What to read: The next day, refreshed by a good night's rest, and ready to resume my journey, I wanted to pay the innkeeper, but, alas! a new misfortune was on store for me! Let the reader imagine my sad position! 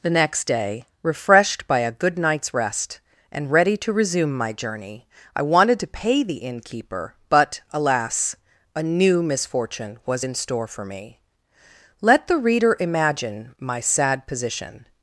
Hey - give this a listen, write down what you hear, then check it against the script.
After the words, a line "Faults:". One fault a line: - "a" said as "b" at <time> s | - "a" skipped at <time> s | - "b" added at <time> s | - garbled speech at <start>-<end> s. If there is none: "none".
The next day, refreshed by a good night's rest, and ready to resume my journey, I wanted to pay the innkeeper, but, alas! a new misfortune was in store for me! Let the reader imagine my sad position!
Faults:
- "on" said as "in" at 10.2 s